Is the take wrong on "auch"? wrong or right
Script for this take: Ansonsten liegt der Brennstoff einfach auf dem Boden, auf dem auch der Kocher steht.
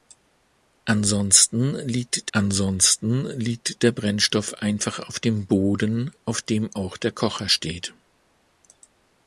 right